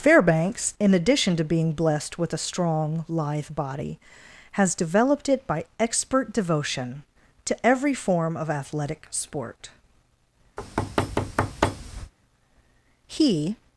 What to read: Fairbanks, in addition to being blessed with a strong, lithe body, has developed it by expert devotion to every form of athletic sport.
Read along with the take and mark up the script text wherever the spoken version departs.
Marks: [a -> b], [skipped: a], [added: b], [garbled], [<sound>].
Fairbanks, in addition to being blessed with a strong, lithe body, has developed it by expert devotion to every form of athletic sport. [thud] [added: He]